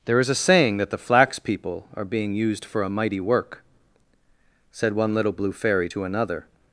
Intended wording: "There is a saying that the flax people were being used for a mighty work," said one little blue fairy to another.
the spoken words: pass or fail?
fail